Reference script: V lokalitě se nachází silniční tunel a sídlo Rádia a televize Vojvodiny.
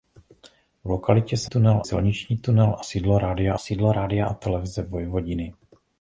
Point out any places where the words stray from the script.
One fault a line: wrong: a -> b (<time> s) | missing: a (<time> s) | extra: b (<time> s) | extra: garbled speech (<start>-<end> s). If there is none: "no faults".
wrong: nachází -> tunel (1.4 s)
extra: sídlo Rádia (3.6 s)